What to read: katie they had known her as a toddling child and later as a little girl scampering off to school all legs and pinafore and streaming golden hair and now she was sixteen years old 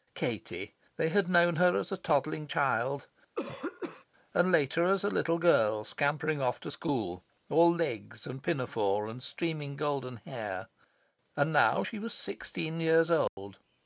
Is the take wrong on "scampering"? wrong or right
right